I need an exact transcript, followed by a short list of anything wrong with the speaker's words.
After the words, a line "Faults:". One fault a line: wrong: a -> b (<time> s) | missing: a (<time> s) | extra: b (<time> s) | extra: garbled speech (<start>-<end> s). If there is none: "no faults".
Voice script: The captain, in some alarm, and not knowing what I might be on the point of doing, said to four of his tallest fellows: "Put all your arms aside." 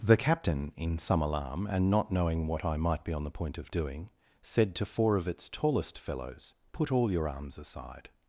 The captain, in some alarm, and not knowing what I might be on the point of doing, said to four of its tallest fellows: "Put all your arms aside."
Faults:
wrong: his -> its (5.3 s)